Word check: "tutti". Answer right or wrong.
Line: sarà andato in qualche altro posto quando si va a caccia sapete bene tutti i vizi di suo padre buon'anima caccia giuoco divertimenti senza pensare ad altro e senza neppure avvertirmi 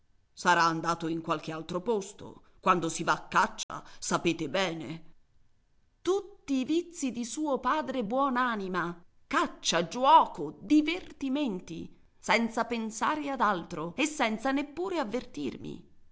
right